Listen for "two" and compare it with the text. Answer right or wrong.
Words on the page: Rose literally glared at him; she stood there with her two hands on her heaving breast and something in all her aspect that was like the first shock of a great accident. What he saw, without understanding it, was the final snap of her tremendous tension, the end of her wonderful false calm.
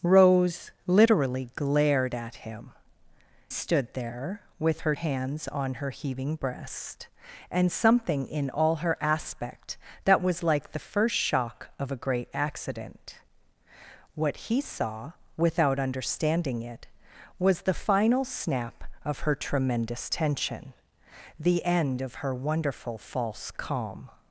wrong